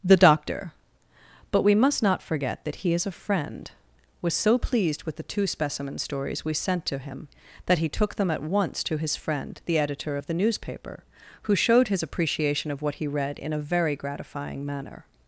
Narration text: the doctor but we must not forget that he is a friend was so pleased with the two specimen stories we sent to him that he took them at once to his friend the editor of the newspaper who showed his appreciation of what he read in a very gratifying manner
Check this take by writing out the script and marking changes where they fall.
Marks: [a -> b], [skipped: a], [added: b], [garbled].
the doctor but we must not forget that he is a friend was so pleased with the two specimen stories we sent to him that he took them at once to his friend the editor of the newspaper who showed his appreciation of what he read in a very gratifying manner